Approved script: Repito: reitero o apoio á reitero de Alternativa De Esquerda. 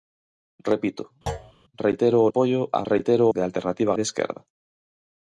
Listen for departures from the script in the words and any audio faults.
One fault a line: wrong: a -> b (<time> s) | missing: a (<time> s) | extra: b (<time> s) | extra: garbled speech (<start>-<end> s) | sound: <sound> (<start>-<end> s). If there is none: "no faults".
sound: thud (1.3-1.5 s)